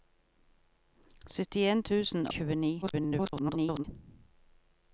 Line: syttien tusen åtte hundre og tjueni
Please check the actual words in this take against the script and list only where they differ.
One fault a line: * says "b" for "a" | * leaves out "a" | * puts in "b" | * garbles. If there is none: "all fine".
* leaves out "åtte hundre"
* garbles